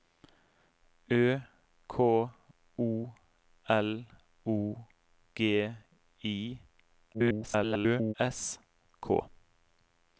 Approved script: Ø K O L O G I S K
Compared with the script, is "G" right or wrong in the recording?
right